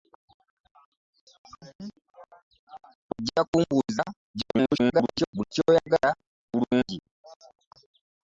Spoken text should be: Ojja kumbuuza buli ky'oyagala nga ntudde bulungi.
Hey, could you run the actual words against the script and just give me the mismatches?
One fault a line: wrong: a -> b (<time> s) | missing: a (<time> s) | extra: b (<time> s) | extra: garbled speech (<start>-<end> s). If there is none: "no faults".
extra: garbled speech (4.3-5.3 s)
missing: nga ntudde (6.1 s)